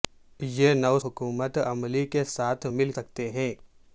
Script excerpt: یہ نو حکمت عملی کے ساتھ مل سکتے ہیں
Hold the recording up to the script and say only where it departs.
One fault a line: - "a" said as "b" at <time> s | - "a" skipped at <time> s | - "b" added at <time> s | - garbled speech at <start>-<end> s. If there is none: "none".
none